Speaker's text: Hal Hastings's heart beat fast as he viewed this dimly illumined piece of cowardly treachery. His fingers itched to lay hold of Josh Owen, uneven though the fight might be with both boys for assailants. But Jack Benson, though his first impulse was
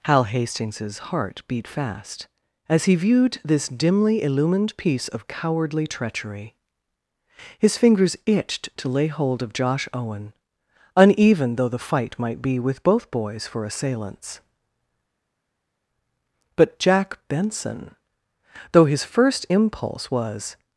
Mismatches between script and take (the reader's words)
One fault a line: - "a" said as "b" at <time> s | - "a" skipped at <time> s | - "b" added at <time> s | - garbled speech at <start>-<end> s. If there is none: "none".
none